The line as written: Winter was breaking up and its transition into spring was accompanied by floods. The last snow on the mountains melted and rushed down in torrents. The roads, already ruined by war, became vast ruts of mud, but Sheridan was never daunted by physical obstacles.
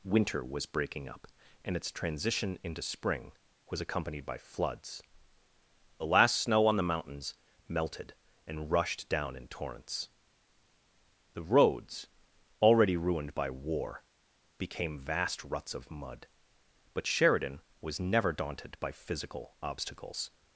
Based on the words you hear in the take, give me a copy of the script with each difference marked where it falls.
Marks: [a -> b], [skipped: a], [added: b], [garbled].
Winter was breaking up and its transition into spring was accompanied by floods. The last snow on the mountains melted and rushed down in torrents. The roads, already ruined by war, became vast ruts of mud, but Sheridan was never daunted by physical obstacles.